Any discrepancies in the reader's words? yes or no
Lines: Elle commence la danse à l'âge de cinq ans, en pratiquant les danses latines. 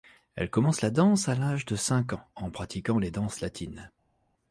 no